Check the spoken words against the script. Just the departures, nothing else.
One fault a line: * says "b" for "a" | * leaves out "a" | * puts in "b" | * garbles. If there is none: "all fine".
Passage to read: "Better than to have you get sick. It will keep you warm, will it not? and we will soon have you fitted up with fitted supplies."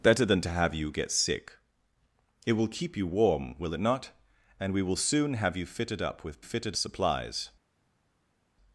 all fine